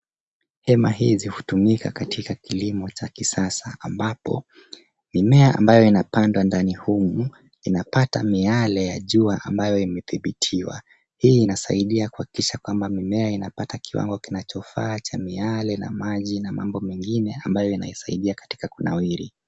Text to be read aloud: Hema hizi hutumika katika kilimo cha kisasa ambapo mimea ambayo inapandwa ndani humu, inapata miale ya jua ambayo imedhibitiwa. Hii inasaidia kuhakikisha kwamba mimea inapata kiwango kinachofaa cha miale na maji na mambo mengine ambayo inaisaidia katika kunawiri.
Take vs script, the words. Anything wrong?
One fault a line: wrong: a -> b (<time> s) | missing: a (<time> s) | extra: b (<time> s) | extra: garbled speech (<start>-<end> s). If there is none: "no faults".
no faults